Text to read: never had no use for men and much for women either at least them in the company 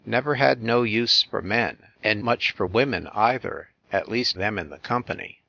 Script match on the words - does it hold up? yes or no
yes